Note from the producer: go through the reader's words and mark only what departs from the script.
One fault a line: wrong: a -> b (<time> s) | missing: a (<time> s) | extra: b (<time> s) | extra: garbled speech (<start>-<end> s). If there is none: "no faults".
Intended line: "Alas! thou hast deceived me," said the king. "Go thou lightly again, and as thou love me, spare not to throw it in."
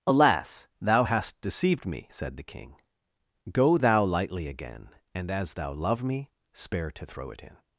missing: not (6.9 s)